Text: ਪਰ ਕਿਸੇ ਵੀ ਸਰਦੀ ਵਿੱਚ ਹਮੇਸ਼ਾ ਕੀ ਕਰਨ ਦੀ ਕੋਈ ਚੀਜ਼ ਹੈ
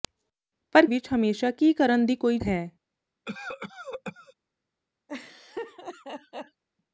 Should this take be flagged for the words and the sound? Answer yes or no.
yes